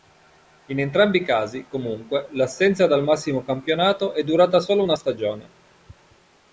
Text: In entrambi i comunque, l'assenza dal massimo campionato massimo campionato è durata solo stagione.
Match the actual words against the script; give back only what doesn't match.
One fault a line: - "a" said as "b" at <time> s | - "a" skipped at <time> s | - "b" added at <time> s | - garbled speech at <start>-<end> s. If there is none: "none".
- "casi" added at 1.2 s
- "massimo campionato" skipped at 4.1 s
- "una" added at 4.8 s